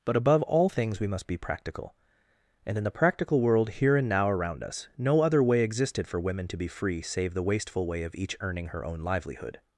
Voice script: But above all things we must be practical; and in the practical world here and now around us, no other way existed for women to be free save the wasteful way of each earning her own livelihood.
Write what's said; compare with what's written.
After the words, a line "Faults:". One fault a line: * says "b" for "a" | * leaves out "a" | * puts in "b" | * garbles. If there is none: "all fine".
But above all things we must be practical; and in the practical world here and now around us, no other way existed for women to be free save the wasteful way of each earning her own livelihood.
Faults:
all fine